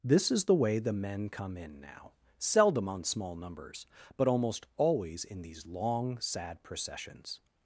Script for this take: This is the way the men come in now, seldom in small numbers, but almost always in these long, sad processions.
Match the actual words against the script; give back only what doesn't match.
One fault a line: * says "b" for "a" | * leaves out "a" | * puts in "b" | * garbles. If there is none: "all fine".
* says "on" for "in"